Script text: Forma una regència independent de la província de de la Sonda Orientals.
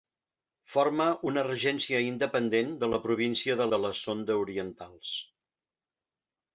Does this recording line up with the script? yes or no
yes